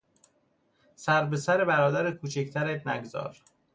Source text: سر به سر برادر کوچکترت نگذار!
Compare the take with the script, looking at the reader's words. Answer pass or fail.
pass